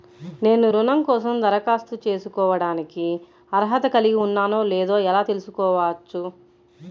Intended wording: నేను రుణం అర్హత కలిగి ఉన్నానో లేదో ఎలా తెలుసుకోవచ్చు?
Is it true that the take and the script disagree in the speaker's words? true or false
true